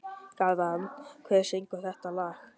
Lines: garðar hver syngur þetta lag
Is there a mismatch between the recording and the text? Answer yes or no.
no